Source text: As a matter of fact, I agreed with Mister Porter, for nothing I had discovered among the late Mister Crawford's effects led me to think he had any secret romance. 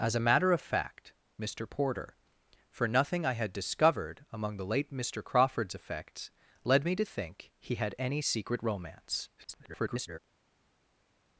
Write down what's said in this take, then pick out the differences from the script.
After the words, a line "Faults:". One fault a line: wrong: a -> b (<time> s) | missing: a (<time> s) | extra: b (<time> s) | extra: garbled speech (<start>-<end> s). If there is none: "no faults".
As a matter of fact, Mister Porter, for nothing I had discovered among the late Mister Crawford's effects led me to think he had any secret romance. [garbled]
Faults:
missing: I agreed with (1.1 s)
extra: garbled speech (9.4-10.2 s)